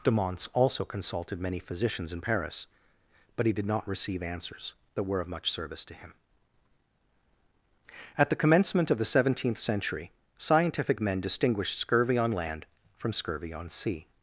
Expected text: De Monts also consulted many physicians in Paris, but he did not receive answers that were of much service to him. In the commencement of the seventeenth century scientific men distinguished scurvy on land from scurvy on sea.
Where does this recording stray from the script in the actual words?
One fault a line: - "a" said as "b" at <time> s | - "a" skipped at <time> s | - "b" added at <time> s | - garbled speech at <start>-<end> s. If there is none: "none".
- "In" said as "At" at 8.2 s